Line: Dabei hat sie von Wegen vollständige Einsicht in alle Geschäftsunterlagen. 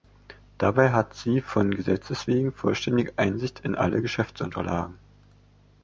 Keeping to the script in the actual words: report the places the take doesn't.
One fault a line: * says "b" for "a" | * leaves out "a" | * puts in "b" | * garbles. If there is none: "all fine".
* puts in "Gesetzes"